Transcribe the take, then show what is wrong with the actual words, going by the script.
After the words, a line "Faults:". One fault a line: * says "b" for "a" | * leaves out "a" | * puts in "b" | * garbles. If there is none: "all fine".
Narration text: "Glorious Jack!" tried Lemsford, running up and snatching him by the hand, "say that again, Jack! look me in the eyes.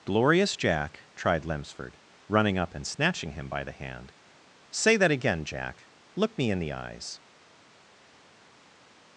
"Glorious Jack!" tried Lemsford, running up and snatching him by the hand, "say that again, Jack! look me in the eyes.
Faults:
all fine